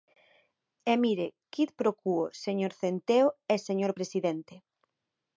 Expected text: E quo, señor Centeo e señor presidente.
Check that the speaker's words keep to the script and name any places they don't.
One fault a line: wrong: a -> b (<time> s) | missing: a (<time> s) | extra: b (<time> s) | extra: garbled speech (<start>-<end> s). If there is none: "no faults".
extra: mire quid pro (1.0 s)